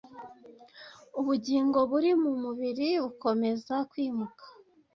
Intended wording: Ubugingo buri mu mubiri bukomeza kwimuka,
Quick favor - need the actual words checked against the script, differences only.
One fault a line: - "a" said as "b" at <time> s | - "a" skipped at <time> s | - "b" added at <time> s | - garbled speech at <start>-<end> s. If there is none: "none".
none